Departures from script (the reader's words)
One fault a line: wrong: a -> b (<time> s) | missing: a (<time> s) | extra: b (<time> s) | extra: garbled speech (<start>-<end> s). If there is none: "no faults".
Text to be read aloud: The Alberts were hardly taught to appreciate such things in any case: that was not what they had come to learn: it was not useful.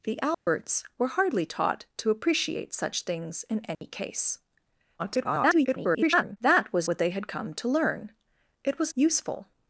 extra: garbled speech (5.0-6.4 s)
missing: not (6.9 s)
missing: not (8.9 s)